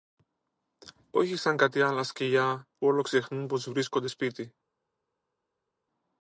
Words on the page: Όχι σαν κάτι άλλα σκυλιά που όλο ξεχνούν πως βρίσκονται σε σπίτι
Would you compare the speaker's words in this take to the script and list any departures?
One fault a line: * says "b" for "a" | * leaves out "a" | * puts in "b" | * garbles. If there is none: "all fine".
* leaves out "σε"